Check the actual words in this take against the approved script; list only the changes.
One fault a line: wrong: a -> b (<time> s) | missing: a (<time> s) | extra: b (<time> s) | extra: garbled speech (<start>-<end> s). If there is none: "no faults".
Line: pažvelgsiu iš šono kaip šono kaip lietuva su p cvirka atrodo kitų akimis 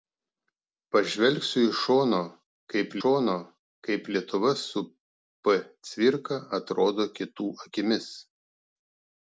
no faults